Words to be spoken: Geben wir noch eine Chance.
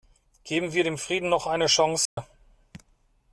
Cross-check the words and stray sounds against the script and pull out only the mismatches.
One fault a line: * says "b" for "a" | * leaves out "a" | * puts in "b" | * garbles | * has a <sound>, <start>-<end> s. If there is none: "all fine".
* puts in "dem Frieden"
* has a dropout, 2.1-2.2 s